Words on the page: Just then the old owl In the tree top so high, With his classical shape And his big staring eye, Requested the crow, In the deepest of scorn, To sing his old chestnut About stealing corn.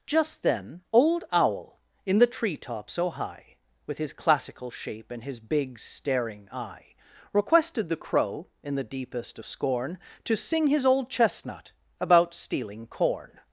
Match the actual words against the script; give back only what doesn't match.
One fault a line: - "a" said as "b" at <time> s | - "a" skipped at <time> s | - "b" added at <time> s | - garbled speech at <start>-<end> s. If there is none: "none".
- "the" skipped at 0.8 s